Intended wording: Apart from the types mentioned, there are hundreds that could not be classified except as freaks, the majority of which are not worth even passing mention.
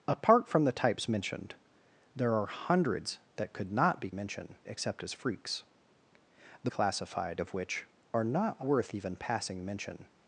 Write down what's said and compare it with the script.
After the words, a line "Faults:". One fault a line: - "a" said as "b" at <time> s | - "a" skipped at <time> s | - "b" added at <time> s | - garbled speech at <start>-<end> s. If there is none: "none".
Apart from the types mentioned, there are hundreds that could not be mention except as freaks, the classified of which are not worth even passing mention.
Faults:
- "classified" said as "mention" at 4.1 s
- "majority" said as "classified" at 6.6 s